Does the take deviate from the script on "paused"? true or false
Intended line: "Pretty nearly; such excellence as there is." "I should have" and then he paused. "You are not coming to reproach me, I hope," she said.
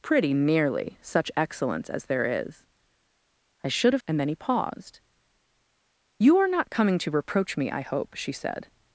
false